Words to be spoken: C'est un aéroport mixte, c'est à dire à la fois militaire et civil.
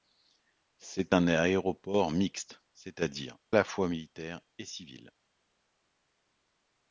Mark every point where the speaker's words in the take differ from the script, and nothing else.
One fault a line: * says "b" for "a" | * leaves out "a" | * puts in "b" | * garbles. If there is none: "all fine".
* leaves out "à"